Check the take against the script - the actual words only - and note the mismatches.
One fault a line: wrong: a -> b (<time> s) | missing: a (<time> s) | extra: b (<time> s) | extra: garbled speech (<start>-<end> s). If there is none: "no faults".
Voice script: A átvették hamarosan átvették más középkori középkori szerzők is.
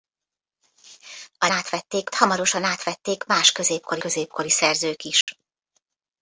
no faults